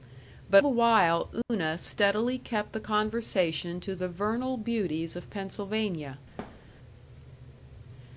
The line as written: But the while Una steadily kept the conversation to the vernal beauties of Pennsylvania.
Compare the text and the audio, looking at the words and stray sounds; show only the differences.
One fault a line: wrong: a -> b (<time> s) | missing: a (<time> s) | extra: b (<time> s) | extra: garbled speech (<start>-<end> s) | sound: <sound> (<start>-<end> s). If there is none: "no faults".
sound: dropout (1.4-1.5 s)
sound: thud (6.4-6.7 s)